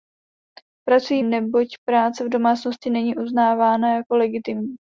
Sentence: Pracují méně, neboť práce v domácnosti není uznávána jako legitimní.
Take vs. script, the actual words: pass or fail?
fail